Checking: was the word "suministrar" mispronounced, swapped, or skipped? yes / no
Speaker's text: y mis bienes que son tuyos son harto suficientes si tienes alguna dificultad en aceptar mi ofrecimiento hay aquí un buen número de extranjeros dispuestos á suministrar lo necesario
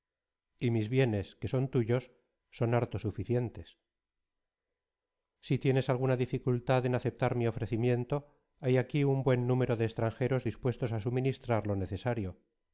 no